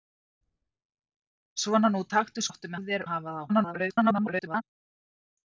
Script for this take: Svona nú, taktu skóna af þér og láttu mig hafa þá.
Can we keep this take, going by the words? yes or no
no